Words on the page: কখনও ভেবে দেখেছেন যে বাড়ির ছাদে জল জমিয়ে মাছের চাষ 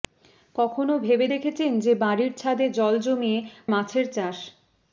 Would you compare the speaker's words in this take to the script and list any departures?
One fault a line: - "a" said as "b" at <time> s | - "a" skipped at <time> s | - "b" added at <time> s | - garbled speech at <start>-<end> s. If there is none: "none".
none